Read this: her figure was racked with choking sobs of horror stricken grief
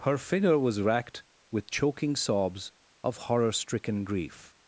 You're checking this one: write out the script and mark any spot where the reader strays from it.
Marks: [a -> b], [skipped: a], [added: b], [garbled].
her figure was racked with choking sobs of horror stricken grief